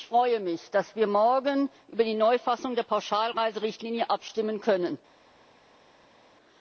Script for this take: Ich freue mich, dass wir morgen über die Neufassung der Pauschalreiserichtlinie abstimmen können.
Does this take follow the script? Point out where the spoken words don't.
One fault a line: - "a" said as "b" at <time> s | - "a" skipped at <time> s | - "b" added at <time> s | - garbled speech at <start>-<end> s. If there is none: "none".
none